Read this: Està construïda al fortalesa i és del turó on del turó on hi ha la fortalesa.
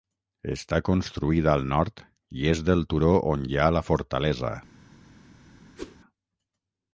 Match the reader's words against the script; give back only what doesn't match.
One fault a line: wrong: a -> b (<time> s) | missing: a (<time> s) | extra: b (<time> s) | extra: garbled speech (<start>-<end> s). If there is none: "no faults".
wrong: fortalesa -> nord (1.8 s)
missing: del turó on (3.5 s)